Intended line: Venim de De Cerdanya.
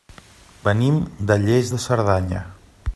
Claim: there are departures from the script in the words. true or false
true